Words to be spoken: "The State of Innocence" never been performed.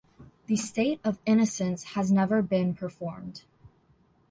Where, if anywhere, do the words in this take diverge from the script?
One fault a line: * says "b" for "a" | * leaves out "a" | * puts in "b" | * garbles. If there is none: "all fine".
* puts in "has"